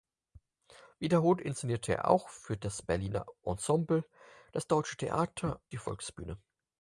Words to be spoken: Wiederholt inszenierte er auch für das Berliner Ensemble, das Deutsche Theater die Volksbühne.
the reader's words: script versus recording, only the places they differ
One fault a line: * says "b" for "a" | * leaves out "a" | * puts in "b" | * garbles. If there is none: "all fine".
all fine